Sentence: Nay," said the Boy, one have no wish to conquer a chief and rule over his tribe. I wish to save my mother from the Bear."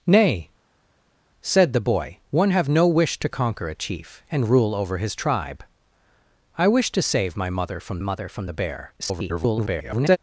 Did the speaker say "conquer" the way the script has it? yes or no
yes